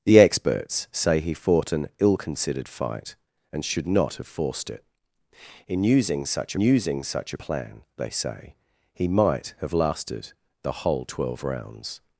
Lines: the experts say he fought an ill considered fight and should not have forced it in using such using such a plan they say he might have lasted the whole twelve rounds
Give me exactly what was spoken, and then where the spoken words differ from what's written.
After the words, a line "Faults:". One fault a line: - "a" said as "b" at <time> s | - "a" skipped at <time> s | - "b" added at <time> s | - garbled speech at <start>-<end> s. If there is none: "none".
the experts say he fought an ill considered fight and should not have forced it in using such using such a plan they say he might have lasted the whole twelve rounds
Faults:
none